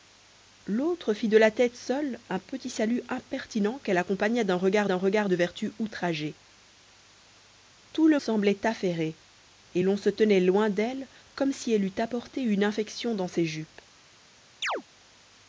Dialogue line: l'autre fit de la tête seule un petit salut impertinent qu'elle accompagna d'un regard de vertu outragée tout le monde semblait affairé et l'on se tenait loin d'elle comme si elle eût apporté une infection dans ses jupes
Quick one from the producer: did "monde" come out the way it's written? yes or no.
no